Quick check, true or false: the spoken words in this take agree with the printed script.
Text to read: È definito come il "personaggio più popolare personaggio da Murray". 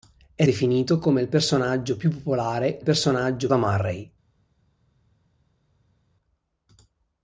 true